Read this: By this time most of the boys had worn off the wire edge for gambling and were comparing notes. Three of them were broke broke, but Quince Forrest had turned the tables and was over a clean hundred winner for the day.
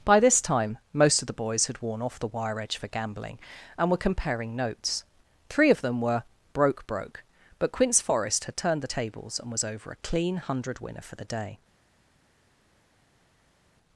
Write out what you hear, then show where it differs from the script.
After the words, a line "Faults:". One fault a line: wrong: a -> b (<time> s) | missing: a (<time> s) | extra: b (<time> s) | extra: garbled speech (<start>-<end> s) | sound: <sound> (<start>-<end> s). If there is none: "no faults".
By this time most of the boys had worn off the wire edge for gambling and were comparing notes. Three of them were broke broke, but Quince Forrest had turned the tables and was over a clean hundred winner for the day.
Faults:
no faults